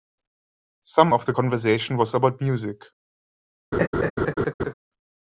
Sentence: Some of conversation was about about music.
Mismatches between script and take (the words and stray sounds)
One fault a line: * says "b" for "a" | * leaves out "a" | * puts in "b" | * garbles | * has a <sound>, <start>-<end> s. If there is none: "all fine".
* puts in "the"
* leaves out "about"
* has a laugh, 3.7-4.7 s